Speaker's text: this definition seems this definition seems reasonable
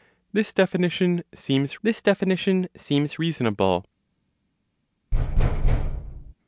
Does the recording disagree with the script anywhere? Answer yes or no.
no